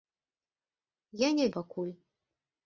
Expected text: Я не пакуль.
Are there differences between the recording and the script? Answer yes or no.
no